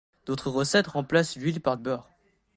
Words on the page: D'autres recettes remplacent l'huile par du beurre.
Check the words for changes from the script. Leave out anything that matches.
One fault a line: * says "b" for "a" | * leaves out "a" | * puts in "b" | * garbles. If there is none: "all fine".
* leaves out "du"